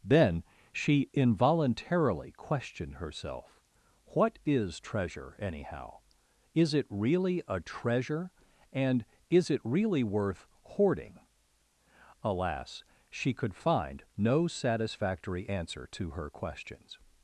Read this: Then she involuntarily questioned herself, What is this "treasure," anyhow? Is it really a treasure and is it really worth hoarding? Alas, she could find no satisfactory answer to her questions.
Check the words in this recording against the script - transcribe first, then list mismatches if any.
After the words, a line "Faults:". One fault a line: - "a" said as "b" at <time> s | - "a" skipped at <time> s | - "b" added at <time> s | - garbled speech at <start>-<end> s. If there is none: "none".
Then she involuntarily questioned herself, What is "treasure," anyhow? Is it really a treasure and is it really worth hoarding? Alas, she could find no satisfactory answer to her questions.
Faults:
- "this" skipped at 4.8 s